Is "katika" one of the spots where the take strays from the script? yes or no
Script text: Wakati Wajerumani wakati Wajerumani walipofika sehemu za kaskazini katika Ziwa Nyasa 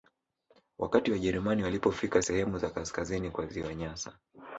yes